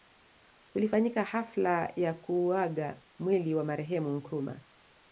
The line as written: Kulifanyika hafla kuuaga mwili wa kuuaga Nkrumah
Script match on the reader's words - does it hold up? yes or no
no